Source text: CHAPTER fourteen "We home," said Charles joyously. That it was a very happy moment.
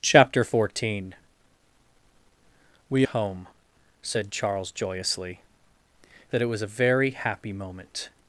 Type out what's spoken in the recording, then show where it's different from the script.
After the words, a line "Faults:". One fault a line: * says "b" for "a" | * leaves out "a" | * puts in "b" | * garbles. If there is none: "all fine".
CHAPTER fourteen "We home," said Charles joyously. That it was a very happy moment.
Faults:
all fine